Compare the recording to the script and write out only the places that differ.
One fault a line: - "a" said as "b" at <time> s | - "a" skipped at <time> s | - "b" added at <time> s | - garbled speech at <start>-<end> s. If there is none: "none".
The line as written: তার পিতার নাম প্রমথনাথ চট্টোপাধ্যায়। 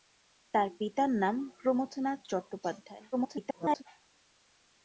- garbled speech at 3.1-3.8 s